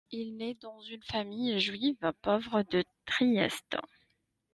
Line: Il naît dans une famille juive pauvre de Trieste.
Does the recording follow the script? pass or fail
pass